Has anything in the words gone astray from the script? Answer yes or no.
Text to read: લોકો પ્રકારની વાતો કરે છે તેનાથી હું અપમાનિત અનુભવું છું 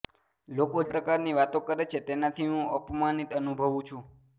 no